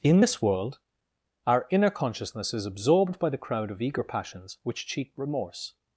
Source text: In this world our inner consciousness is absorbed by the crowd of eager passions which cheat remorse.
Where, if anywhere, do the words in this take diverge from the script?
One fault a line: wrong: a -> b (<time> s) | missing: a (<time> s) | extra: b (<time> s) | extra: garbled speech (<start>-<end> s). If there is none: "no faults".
no faults